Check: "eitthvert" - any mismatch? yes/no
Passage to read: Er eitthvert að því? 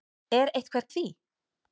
no